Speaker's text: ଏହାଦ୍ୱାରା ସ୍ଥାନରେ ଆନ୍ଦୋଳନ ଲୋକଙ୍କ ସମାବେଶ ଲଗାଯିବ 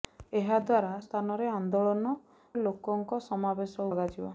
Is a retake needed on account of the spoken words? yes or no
no